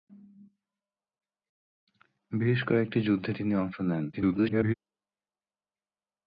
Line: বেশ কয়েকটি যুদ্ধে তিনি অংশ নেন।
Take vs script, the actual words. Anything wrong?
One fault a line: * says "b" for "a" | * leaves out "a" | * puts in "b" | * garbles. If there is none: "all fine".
* garbles